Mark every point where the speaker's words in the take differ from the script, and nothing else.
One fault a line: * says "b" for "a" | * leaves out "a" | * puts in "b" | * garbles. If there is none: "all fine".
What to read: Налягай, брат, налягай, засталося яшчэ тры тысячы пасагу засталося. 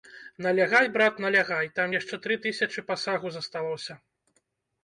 * says "там" for "засталося"